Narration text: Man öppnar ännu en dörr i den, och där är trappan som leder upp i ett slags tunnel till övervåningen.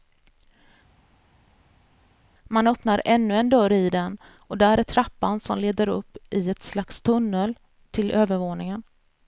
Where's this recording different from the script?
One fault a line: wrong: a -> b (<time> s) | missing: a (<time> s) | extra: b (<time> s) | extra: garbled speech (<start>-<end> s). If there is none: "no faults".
no faults